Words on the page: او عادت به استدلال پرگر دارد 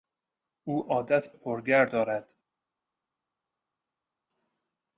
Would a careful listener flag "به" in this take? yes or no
yes